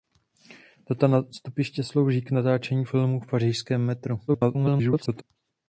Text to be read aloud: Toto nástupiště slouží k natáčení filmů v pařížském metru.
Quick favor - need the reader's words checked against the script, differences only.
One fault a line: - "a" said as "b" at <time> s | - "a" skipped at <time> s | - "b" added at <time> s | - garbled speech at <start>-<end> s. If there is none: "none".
- garbled speech at 4.3-5.2 s